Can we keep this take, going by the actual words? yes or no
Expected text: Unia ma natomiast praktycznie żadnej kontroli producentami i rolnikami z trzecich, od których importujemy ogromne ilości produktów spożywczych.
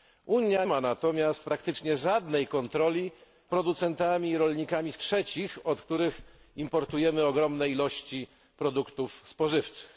yes